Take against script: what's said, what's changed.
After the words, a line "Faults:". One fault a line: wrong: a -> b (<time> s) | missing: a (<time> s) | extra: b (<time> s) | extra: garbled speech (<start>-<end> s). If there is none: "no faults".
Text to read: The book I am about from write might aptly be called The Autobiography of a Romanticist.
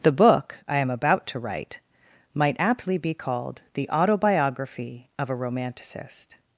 The book I am about to write might aptly be called The Autobiography of a Romanticist.
Faults:
wrong: from -> to (1.3 s)